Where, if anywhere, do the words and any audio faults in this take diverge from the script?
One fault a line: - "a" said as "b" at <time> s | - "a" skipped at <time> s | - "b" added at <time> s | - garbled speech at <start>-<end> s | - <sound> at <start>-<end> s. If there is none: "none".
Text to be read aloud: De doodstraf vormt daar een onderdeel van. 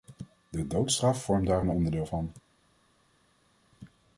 none